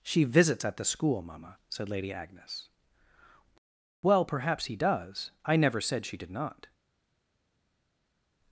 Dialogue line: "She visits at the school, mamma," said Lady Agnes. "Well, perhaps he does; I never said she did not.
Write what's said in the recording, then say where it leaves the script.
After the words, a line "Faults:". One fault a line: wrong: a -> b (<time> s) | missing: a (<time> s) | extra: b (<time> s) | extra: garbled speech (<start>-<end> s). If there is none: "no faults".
"She visits at the school, mamma," said Lady Agnes. "Well, perhaps he does; I never said she did not.
Faults:
no faults